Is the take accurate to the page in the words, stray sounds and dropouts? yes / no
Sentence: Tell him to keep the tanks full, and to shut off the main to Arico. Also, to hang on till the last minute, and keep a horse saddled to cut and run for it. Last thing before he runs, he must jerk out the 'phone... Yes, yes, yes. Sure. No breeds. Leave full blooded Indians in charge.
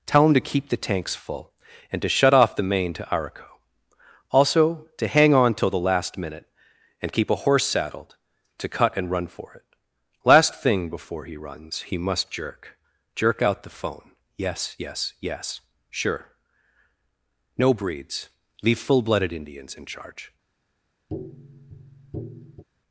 no